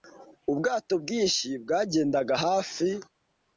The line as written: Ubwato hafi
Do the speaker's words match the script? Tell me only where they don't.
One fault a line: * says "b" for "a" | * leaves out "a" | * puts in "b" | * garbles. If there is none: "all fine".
* puts in "bwinshi bwagendaga"